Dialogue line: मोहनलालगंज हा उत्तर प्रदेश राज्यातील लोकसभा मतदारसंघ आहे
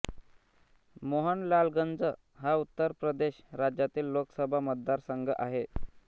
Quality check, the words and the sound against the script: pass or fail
pass